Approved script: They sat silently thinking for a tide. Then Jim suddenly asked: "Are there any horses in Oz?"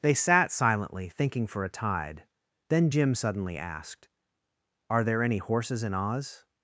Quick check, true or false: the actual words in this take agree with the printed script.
true